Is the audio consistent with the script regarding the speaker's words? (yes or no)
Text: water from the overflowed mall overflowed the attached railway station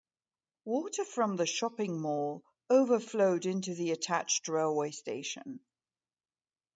no